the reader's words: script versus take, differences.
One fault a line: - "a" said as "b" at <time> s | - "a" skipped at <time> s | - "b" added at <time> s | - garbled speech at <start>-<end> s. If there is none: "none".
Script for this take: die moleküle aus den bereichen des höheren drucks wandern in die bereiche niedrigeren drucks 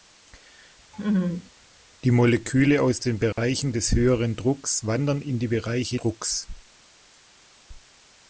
- "niedrigeren" skipped at 6.0 s